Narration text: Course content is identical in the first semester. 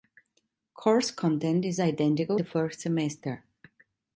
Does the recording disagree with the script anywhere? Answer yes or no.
yes